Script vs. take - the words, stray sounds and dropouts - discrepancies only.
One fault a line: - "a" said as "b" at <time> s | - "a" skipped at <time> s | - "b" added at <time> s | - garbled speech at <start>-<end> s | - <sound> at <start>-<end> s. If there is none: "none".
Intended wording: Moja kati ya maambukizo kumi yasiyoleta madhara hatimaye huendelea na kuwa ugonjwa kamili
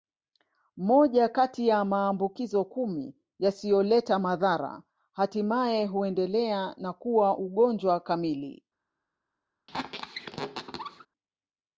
- squeak at 9.7-11.1 s